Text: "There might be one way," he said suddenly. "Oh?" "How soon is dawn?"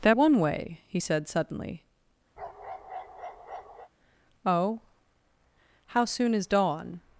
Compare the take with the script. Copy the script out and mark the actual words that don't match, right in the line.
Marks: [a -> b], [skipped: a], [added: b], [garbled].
"There [skipped: might be] one way," he said suddenly. "Oh?" "How soon is dawn?"